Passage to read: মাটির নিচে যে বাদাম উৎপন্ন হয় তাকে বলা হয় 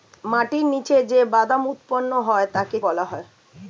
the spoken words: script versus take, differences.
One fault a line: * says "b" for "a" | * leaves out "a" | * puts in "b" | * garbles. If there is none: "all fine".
all fine